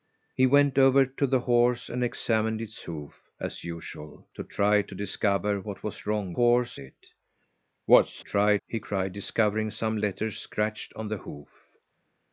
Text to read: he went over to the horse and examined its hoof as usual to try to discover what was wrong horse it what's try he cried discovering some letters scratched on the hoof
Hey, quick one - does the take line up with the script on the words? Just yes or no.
yes